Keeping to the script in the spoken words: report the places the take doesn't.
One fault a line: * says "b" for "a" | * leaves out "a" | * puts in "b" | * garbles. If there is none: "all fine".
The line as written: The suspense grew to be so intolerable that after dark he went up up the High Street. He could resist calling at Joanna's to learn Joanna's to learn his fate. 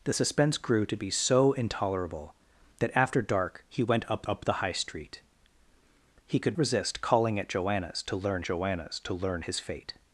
all fine